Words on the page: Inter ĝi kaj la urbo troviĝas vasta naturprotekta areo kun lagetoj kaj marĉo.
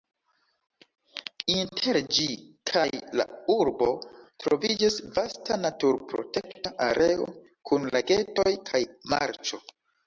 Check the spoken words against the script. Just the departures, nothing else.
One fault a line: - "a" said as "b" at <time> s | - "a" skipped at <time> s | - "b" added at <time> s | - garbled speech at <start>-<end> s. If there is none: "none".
none